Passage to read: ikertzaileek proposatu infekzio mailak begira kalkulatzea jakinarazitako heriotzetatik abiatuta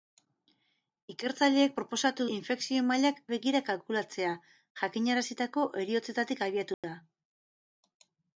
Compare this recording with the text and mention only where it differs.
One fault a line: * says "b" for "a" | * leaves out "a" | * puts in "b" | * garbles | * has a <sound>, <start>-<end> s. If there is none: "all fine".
* has a dropout, 6.7-6.8 s